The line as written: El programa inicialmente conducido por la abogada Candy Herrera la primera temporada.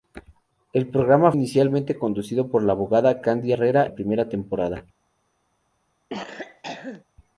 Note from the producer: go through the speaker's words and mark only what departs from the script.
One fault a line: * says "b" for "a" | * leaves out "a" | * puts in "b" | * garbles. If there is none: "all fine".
all fine